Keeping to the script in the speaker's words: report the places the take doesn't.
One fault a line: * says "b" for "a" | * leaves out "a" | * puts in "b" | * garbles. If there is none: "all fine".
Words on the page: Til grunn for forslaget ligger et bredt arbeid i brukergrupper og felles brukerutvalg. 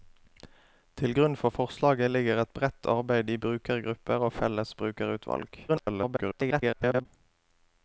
* garbles